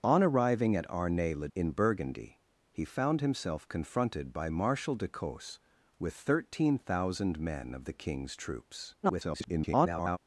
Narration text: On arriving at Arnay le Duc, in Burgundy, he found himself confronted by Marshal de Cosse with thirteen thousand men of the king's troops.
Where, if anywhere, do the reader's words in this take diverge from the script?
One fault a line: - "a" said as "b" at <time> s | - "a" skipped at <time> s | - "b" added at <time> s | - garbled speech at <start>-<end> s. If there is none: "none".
- "Duc" skipped at 1.5 s
- garbled speech at 9.0-10.2 s